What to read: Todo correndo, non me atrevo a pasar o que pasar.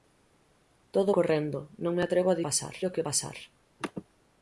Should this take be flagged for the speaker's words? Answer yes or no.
no